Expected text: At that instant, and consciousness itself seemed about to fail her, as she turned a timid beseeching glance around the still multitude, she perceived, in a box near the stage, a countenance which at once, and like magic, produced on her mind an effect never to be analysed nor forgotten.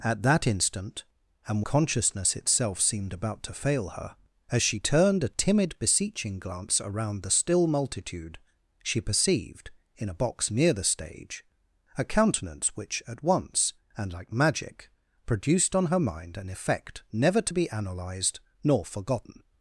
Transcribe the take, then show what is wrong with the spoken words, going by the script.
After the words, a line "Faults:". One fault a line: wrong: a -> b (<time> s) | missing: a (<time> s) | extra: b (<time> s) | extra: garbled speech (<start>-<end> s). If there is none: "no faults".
At that instant, and consciousness itself seemed about to fail her, as she turned a timid beseeching glance around the still multitude, she perceived, in a box near the stage, a countenance which at once, and like magic, produced on her mind an effect never to be analysed nor forgotten.
Faults:
no faults